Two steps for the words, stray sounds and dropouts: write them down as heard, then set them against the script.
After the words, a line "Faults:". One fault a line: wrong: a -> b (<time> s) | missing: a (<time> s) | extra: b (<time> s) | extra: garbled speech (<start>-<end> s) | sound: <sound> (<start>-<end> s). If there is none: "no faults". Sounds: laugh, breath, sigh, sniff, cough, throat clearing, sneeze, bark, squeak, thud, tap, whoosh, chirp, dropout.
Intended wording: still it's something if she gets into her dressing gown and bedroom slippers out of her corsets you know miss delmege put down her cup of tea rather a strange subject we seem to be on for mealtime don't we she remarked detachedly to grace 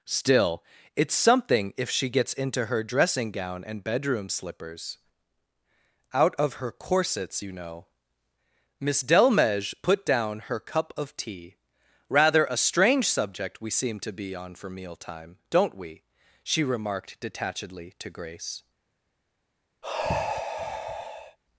still it's something if she gets into her dressing gown and bedroom slippers out of her corsets you know miss delmege put down her cup of tea rather a strange subject we seem to be on for mealtime don't we she remarked detachedly to grace
Faults:
sound: sigh (19.8-21.4 s)